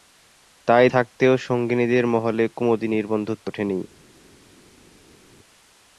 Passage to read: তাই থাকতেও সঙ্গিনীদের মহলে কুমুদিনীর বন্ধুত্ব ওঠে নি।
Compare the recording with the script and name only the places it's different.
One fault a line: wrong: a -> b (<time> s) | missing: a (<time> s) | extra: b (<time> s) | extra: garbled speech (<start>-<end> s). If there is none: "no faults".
no faults